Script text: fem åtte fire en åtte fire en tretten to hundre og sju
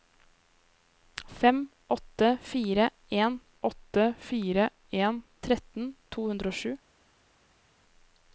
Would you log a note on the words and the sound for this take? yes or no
no